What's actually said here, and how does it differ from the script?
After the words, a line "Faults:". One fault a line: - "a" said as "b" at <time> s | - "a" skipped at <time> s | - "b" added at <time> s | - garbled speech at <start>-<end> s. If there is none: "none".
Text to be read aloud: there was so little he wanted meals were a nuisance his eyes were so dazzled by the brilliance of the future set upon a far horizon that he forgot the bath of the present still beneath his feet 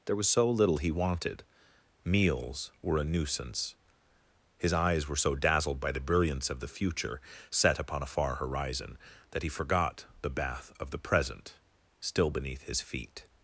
there was so little he wanted meals were a nuisance his eyes were so dazzled by the brilliance of the future set upon a far horizon that he forgot the bath of the present still beneath his feet
Faults:
none